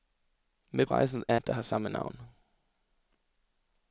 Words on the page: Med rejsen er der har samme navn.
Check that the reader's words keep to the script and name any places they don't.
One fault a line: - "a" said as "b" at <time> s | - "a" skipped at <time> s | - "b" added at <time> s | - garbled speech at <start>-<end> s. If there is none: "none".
none